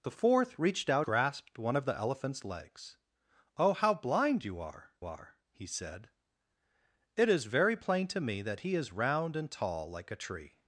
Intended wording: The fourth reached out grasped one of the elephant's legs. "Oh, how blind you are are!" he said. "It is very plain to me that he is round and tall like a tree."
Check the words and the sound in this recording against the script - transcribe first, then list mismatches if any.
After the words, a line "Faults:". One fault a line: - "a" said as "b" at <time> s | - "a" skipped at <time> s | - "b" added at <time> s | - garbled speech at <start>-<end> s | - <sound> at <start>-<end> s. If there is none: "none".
The fourth reached out grasped one of the elephant's legs. "Oh, how blind you are are!" he said. "It is very plain to me that he is round and tall like a tree."
Faults:
none